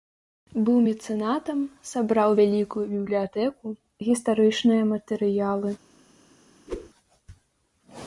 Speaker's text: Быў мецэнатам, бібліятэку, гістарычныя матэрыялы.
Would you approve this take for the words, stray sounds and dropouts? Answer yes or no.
no